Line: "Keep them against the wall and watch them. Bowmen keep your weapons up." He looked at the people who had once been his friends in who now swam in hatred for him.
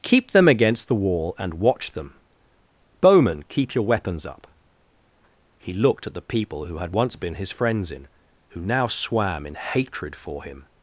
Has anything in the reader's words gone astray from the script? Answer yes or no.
no